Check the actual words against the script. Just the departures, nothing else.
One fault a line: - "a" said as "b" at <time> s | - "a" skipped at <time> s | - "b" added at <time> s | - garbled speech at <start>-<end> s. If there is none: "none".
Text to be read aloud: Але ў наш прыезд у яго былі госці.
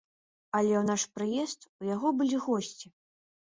none